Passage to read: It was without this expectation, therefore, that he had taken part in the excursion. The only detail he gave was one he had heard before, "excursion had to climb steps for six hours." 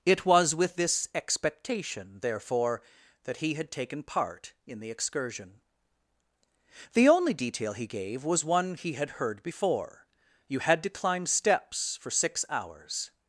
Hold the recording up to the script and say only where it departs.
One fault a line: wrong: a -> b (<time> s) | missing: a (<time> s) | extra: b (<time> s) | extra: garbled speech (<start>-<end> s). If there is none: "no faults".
wrong: without -> with (0.6 s)
wrong: excursion -> you (10.5 s)